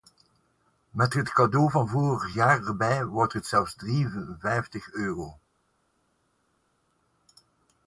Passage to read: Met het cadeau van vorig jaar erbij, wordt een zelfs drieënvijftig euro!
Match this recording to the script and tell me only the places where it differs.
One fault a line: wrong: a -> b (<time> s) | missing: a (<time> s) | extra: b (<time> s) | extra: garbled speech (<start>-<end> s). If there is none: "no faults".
wrong: een -> het (3.3 s)